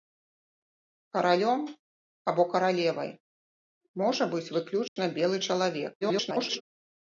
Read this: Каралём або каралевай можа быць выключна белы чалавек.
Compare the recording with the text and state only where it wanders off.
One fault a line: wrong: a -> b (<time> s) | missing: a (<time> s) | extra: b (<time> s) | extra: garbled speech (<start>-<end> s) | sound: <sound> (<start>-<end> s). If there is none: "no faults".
sound: dropout (4.9-5.0 s)
extra: garbled speech (6.0-6.6 s)